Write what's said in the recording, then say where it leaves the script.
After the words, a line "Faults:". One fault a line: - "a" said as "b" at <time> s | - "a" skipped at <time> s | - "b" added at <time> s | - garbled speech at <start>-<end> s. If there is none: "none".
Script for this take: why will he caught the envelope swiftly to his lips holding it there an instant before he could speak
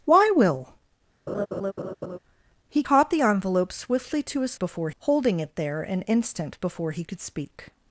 why will he caught the envelope swiftly to his before holding it there an instant before he could speak
Faults:
- "lips" said as "before" at 4.6 s